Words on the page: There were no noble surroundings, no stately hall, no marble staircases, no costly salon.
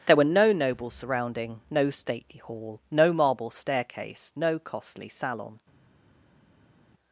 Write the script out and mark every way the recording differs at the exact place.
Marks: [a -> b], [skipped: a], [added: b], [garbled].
There were no noble [surroundings, -> surrounding] no stately hall, no marble [staircases, -> staircase] no costly salon.